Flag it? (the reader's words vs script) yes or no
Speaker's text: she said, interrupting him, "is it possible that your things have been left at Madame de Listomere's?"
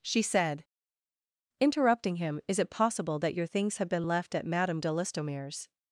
no